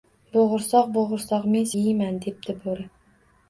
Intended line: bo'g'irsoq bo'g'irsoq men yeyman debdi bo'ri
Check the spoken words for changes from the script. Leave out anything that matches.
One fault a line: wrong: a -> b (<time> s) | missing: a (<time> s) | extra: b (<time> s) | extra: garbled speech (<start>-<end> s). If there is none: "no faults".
no faults